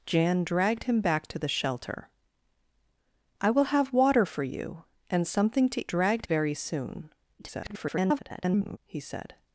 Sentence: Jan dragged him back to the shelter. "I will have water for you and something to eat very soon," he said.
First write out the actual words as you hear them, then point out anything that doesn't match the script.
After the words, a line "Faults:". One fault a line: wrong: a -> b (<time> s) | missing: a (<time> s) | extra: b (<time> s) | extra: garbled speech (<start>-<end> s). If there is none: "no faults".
Jan dragged him back to the shelter. "I will have water for you and something to dragged very soon," [garbled] he said.
Faults:
wrong: eat -> dragged (5.9 s)
extra: garbled speech (7.4-8.8 s)